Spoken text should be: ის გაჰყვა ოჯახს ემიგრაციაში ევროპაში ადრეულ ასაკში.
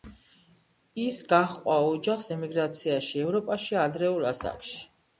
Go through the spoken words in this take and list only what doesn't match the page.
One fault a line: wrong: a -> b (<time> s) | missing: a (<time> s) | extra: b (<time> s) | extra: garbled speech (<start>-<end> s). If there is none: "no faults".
no faults